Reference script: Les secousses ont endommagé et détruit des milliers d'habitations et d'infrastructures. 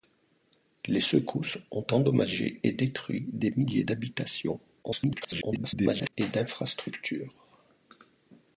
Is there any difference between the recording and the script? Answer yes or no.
yes